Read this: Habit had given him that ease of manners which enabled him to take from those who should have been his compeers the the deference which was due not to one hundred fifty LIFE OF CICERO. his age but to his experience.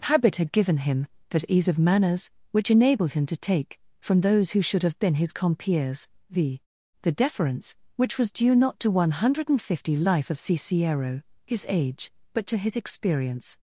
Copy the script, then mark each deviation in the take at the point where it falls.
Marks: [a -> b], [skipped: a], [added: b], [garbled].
Habit had given him that ease of manners which enabled him to take from those who should have been his compeers the the deference which was due not to one hundred fifty LIFE OF CICERO. his age but to his experience.